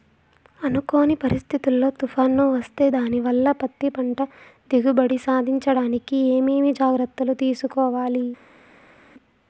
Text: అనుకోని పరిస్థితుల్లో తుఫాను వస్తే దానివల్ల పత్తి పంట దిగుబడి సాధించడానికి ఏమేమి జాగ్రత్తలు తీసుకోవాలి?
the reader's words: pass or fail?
pass